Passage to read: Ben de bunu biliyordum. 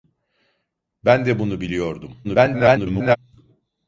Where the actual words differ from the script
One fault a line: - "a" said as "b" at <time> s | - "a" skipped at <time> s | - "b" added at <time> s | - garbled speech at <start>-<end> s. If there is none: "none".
- garbled speech at 2.2-3.2 s